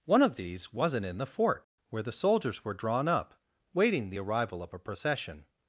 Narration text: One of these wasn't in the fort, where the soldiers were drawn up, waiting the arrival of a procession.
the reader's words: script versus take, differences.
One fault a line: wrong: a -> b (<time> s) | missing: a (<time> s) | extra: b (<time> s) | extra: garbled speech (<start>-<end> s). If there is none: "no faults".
no faults